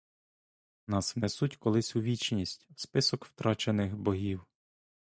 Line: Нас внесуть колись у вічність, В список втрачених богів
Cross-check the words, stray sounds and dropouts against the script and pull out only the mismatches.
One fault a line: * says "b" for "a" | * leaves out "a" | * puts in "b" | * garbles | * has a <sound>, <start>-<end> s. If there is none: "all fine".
all fine